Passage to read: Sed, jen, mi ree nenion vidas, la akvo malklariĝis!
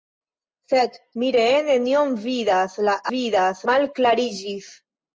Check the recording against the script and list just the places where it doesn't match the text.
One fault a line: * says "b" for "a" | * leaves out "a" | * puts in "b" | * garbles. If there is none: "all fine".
* leaves out "jen"
* says "vidas" for "akvo"